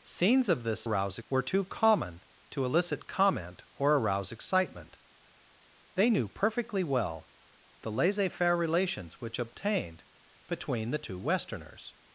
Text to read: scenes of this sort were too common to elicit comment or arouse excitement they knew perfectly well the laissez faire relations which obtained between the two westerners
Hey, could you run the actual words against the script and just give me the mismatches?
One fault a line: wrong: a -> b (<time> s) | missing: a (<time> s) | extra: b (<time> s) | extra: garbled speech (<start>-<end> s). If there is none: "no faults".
wrong: sort -> arouse (0.8 s)